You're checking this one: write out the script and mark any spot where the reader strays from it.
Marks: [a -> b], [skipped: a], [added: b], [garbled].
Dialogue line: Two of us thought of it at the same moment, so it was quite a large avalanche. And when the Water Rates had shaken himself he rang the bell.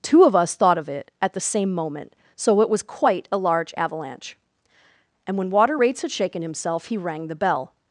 Two of us thought of it at the same moment, so it was quite a large avalanche. And when [skipped: the] Water Rates had shaken himself he rang the bell.